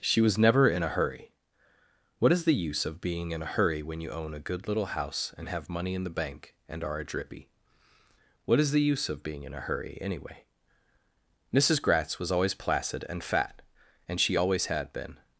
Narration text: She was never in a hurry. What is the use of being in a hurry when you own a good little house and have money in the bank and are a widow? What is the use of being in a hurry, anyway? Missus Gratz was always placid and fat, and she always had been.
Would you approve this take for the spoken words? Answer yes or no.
no